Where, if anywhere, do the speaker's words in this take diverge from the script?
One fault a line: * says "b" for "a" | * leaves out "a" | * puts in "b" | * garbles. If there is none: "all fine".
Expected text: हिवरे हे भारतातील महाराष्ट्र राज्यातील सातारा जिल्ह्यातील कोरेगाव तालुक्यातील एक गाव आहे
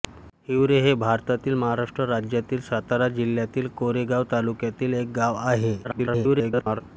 * garbles